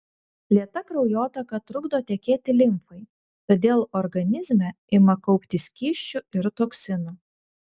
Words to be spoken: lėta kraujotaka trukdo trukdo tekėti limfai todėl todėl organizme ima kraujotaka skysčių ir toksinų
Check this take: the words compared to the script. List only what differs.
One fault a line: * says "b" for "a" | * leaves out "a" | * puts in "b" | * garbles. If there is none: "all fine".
* leaves out "trukdo"
* leaves out "todėl"
* says "kauptis" for "kraujotaka"